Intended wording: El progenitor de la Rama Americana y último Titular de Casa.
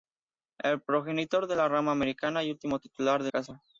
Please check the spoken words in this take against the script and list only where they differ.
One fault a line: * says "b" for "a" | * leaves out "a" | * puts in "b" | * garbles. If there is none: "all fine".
all fine